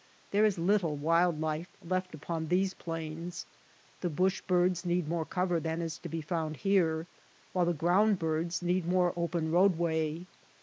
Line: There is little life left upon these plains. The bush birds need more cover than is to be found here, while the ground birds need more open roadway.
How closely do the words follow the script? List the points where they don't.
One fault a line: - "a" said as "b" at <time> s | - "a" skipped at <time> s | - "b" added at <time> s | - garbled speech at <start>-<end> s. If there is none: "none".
- "wild" added at 1.0 s